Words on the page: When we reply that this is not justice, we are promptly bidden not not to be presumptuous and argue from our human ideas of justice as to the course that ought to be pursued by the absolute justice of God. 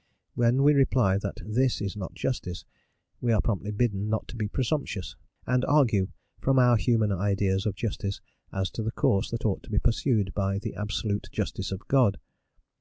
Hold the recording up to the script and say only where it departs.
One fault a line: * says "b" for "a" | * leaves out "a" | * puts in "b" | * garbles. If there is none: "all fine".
* leaves out "not"